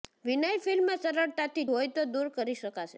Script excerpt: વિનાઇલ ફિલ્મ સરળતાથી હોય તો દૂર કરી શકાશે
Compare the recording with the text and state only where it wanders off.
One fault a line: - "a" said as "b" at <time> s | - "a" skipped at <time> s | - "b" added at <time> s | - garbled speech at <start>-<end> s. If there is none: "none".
none